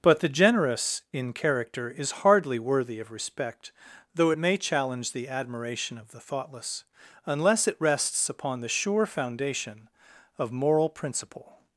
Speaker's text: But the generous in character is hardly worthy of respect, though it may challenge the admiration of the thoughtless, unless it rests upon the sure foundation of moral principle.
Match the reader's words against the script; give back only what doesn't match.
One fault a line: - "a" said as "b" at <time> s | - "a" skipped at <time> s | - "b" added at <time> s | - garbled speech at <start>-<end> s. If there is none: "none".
none